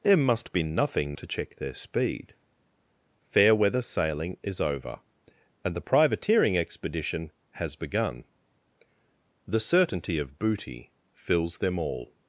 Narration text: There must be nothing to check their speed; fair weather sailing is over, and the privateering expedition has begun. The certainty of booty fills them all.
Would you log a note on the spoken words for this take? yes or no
no